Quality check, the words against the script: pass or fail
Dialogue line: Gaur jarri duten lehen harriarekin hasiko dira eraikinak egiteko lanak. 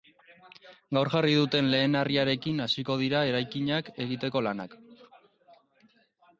pass